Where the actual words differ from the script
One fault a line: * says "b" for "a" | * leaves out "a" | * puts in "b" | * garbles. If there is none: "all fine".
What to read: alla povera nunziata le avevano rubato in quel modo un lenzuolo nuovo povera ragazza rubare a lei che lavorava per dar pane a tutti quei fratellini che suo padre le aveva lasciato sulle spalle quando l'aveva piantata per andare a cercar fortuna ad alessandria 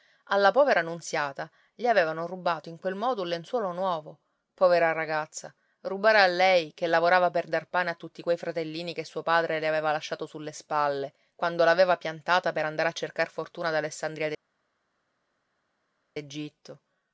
all fine